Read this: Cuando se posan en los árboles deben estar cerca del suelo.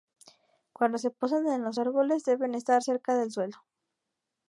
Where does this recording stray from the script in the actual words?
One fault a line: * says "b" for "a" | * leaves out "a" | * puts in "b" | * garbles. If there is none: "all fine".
all fine